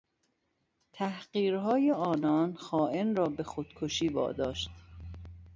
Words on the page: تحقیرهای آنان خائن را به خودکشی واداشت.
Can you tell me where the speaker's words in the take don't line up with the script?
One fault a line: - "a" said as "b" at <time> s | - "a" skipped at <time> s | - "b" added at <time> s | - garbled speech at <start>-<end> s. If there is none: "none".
none